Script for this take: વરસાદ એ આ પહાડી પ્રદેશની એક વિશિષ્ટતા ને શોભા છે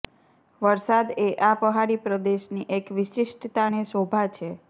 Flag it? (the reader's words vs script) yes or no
no